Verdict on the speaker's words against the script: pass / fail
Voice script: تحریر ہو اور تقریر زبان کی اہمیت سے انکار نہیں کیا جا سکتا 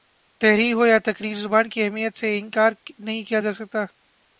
fail